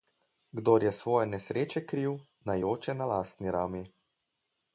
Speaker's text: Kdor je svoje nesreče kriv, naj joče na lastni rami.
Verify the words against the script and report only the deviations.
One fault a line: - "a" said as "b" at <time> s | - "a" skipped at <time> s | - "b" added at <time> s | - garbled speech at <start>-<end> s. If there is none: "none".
none